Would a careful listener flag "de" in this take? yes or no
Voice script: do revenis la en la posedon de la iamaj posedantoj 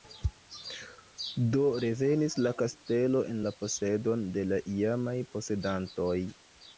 no